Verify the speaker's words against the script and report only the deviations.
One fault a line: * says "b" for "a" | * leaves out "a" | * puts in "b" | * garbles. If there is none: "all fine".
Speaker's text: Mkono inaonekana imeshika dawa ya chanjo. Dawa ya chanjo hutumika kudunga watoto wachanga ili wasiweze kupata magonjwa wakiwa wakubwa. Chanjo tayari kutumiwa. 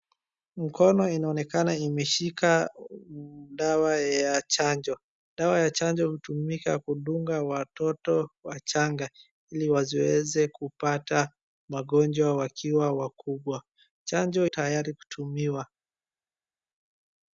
all fine